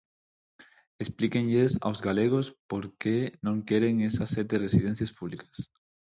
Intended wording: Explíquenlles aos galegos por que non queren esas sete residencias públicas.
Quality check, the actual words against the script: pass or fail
pass